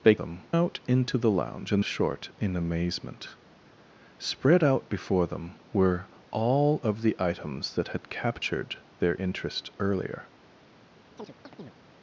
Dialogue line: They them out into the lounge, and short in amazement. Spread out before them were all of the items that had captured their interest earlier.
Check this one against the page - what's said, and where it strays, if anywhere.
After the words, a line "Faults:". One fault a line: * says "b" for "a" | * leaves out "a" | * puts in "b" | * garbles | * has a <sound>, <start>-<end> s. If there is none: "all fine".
They them out into the lounge, and short in amazement. Spread out before them were all of the items that had captured their interest earlier.
Faults:
* has a chirp, 11.2-11.7 s